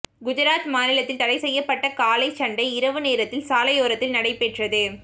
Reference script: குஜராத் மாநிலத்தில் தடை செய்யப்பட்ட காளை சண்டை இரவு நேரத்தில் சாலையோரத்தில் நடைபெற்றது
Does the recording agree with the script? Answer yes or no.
yes